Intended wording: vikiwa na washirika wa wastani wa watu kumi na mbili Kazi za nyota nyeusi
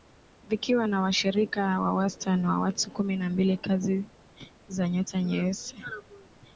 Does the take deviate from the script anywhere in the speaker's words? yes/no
no